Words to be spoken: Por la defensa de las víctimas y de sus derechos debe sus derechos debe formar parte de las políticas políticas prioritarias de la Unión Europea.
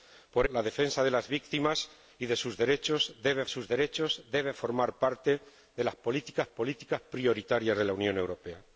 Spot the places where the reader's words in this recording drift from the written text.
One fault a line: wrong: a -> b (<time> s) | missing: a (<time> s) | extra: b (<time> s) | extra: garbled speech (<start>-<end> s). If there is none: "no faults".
no faults